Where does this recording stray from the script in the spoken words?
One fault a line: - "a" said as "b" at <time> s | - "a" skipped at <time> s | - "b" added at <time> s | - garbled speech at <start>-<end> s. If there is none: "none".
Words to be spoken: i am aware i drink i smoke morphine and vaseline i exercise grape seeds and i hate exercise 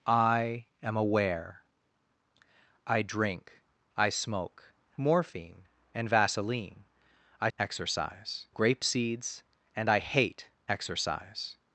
none